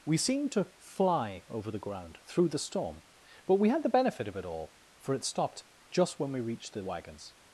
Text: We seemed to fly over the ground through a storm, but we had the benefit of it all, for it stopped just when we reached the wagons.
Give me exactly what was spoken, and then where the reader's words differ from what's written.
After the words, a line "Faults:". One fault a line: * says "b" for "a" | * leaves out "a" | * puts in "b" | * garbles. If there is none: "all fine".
We seemed to fly over the ground through the storm, but we had the benefit of it all, for it stopped just when we reached the wagons.
Faults:
* says "the" for "a"